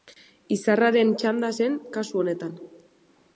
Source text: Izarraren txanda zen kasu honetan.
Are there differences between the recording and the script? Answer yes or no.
no